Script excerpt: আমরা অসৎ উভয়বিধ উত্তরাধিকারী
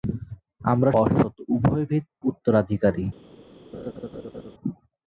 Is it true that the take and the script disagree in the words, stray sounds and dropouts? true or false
true